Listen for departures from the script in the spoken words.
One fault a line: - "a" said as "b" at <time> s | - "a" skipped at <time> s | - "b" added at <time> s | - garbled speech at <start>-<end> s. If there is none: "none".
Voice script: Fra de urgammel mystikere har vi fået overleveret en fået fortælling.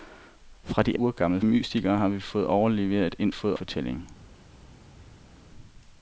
none